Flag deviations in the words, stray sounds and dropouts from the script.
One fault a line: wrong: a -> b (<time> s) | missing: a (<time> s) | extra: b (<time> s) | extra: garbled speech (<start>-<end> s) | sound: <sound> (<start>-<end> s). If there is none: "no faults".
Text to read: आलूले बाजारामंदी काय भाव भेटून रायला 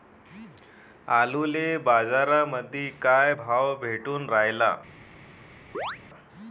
sound: chirp (5.7-6.0 s)